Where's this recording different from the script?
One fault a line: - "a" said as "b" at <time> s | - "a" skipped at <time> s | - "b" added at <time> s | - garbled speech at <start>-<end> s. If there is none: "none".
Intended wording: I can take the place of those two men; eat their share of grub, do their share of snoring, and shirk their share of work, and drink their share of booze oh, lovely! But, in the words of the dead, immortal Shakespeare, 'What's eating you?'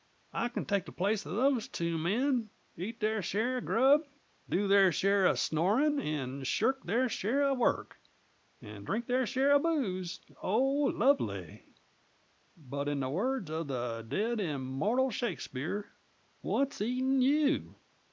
none